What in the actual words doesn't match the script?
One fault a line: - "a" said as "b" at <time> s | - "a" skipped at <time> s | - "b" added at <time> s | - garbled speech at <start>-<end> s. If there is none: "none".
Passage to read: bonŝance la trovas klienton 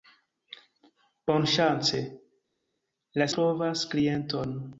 none